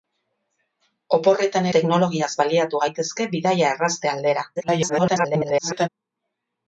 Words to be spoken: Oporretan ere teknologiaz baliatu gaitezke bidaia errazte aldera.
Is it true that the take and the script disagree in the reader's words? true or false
true